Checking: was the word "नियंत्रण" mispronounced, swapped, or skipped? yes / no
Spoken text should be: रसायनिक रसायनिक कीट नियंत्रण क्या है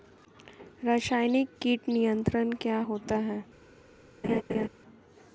no